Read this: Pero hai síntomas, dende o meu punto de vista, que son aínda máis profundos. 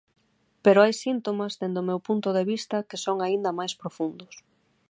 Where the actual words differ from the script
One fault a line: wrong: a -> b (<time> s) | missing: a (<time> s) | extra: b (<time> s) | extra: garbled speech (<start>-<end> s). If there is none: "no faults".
no faults